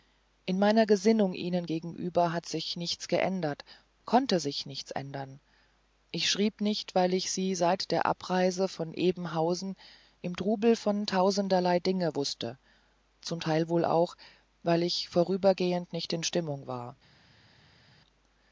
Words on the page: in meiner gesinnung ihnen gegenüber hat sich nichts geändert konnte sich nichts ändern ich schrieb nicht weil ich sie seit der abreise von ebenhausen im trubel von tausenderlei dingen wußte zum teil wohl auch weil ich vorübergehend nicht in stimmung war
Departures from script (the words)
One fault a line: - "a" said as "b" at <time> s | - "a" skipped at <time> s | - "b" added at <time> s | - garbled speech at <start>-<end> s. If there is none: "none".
none